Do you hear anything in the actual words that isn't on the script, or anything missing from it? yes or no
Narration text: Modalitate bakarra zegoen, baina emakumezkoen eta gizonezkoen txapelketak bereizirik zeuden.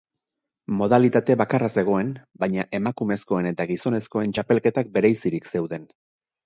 no